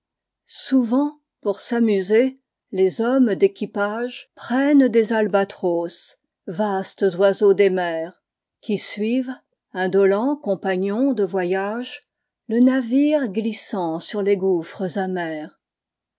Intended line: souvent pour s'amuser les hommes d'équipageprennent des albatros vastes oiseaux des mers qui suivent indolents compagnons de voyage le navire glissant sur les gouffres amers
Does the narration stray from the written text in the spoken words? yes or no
no